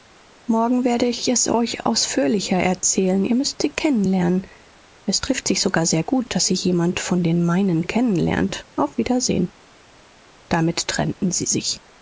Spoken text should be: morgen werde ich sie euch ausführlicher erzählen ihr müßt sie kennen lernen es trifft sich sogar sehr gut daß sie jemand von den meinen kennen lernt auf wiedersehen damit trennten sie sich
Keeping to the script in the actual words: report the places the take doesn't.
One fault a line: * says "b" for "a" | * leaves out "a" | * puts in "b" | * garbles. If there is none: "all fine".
* says "es" for "sie"